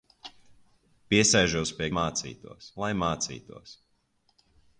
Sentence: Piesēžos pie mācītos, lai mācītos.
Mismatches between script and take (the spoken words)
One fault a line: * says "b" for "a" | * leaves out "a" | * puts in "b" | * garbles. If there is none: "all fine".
all fine